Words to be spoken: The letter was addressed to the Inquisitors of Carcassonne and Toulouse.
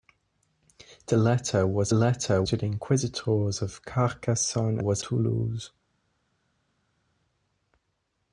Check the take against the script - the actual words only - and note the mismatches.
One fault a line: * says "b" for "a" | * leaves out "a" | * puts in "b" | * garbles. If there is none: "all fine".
* says "letter" for "addressed"
* says "was" for "and"